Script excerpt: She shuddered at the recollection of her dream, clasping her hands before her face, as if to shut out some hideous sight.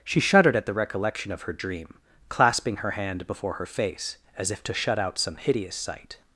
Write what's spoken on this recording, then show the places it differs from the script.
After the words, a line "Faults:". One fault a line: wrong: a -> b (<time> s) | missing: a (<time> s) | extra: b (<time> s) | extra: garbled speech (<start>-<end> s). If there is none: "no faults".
She shuddered at the recollection of her dream, clasping her hand before her face, as if to shut out some hideous sight.
Faults:
wrong: hands -> hand (2.9 s)